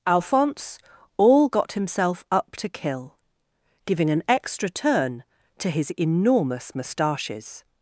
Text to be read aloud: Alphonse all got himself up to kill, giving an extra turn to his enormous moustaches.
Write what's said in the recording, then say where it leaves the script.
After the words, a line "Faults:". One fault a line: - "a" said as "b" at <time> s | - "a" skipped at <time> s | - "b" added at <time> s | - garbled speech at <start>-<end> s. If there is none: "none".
Alphonse all got himself up to kill, giving an extra turn to his enormous moustaches.
Faults:
none